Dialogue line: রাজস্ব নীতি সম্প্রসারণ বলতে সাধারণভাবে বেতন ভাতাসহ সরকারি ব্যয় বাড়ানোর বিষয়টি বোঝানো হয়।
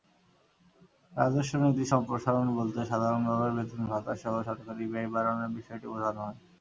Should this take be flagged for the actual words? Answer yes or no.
no